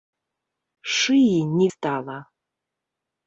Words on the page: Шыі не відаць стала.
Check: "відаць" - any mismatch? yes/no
yes